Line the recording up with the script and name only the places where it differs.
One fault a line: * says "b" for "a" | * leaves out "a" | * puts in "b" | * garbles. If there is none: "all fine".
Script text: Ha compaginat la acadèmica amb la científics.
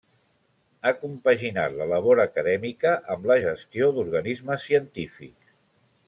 * puts in "labor"
* puts in "gestió d'organismes"